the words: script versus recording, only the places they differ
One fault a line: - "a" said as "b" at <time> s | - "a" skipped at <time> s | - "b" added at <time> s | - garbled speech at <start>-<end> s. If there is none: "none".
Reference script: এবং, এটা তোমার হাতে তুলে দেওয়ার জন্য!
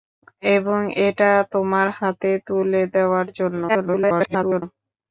- garbled speech at 3.7-4.6 s